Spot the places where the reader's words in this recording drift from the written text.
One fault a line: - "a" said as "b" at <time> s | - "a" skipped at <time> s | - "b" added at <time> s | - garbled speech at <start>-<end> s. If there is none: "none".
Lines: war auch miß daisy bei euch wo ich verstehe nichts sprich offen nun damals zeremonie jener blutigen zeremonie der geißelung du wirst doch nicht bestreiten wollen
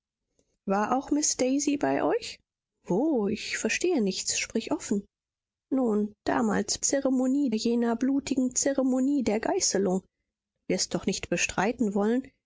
none